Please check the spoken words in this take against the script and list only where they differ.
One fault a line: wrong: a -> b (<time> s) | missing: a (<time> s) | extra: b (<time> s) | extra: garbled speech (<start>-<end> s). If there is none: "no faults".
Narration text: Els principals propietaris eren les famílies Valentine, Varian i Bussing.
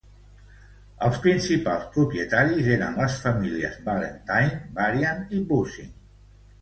no faults